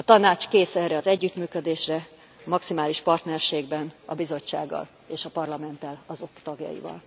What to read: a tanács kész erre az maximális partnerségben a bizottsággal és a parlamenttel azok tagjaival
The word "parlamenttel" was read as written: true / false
true